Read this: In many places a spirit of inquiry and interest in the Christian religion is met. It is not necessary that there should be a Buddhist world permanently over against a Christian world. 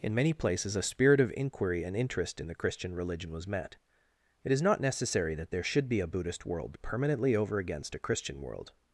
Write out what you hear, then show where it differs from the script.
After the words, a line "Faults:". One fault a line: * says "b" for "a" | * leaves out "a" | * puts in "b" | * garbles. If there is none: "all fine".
In many places a spirit of inquiry and interest in the Christian religion was met. It is not necessary that there should be a Buddhist world permanently over against a Christian world.
Faults:
* says "was" for "is"